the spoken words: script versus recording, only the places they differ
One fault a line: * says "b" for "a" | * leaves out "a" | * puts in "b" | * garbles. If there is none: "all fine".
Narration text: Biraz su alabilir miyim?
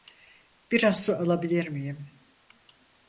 all fine